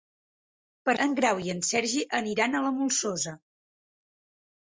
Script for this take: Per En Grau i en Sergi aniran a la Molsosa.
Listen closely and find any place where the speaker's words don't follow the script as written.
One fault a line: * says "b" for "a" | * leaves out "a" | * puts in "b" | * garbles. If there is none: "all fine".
all fine